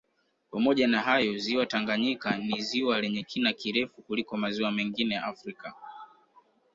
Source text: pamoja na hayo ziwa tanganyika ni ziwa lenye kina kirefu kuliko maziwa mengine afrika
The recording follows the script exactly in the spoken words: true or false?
true